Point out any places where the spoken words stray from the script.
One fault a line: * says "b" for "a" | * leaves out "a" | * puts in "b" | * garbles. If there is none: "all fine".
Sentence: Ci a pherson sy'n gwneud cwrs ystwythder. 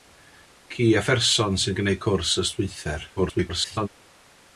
* garbles